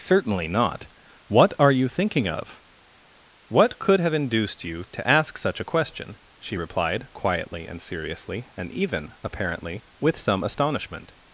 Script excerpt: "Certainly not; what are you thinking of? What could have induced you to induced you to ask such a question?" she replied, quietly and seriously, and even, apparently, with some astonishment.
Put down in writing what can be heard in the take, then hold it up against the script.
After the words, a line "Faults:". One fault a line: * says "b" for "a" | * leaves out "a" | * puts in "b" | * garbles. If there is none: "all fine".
"Certainly not; what are you thinking of? What could have induced you to ask such a question?" she replied, quietly and seriously, and even, apparently, with some astonishment.
Faults:
* leaves out "induced you to"